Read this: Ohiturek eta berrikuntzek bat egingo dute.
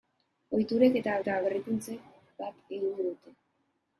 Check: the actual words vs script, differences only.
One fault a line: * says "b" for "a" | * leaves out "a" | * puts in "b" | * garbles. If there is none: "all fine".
* puts in "eta"